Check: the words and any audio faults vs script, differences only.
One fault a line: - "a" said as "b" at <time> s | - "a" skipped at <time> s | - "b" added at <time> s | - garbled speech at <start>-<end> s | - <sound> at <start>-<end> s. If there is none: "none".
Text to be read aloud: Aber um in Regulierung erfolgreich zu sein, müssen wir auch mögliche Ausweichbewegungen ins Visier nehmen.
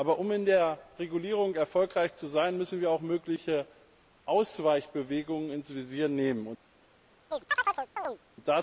- "der" added at 0.5 s
- chirp at 7.3-8.2 s